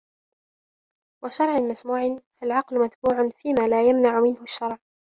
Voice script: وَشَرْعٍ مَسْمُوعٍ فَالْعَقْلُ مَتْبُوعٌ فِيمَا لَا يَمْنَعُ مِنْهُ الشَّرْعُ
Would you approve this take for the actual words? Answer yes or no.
yes